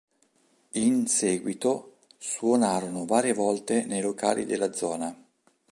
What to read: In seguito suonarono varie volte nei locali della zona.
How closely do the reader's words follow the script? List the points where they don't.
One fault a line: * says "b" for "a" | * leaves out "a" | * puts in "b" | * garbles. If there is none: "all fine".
all fine